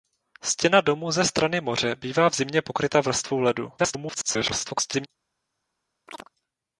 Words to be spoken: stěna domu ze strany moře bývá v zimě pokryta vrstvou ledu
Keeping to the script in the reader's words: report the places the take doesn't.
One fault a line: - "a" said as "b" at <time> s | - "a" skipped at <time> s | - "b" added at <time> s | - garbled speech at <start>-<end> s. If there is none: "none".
- garbled speech at 3.8-5.1 s